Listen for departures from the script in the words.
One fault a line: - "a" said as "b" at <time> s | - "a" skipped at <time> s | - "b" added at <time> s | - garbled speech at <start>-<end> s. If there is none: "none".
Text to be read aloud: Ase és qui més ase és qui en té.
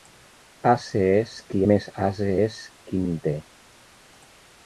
none